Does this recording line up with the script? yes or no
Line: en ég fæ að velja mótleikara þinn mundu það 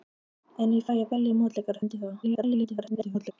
no